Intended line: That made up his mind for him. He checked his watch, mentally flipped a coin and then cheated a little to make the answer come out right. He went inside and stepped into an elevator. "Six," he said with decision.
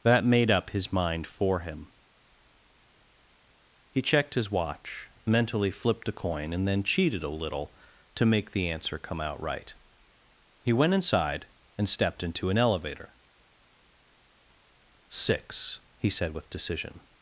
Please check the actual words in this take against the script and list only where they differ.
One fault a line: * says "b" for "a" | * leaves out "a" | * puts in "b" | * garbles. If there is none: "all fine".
all fine